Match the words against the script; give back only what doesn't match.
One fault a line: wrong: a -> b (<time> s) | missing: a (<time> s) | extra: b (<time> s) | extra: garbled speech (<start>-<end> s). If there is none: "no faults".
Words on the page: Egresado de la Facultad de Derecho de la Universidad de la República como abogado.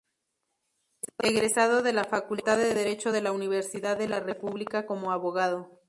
no faults